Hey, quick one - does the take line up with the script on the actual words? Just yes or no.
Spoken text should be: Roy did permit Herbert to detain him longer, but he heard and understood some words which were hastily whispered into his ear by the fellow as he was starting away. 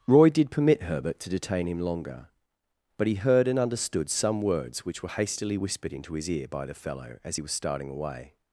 yes